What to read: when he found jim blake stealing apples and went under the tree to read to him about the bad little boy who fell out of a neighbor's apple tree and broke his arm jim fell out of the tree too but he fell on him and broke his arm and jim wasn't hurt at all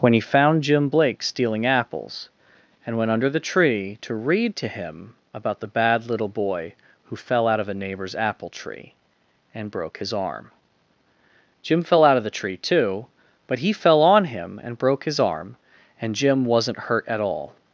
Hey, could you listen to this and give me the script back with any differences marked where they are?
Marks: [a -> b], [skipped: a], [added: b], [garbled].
when he found jim blake stealing apples and went under the tree to read to him about the bad little boy who fell out of a neighbor's apple tree and broke his arm jim fell out of the tree too but he fell on him and broke his arm and jim wasn't hurt at all